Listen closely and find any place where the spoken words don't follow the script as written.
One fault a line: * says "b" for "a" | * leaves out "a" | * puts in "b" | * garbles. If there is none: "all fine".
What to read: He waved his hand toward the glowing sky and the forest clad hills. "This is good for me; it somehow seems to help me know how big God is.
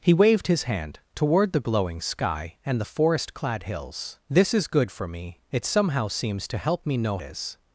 * leaves out "how big God"